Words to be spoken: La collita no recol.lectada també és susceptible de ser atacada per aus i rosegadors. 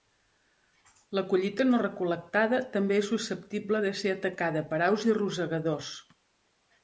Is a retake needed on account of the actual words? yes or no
no